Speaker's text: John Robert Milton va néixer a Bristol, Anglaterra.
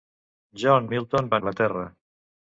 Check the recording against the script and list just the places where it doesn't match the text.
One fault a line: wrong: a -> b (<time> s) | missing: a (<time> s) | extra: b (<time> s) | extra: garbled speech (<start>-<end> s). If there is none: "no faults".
missing: Robert (0.9 s)
missing: néixer a Bristol (1.4 s)